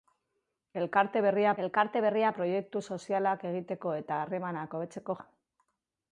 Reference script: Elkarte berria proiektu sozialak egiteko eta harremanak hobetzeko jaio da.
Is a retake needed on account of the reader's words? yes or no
yes